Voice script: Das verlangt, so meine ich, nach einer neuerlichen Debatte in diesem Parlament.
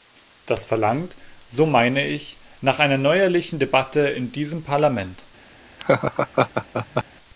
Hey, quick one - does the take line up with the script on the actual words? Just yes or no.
yes